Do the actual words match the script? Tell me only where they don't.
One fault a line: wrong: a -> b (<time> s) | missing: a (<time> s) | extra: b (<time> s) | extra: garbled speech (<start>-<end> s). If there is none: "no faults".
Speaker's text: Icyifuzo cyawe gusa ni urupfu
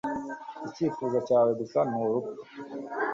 no faults